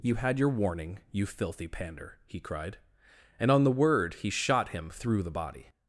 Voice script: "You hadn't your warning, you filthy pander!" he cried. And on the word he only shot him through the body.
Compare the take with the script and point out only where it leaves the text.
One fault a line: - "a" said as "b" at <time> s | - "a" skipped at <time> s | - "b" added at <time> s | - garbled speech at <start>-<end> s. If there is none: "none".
- "hadn't" said as "had" at 0.1 s
- "only" skipped at 4.3 s